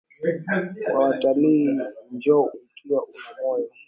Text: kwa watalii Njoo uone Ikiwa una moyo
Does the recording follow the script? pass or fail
fail